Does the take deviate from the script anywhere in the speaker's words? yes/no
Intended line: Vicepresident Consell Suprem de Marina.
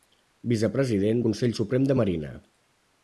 no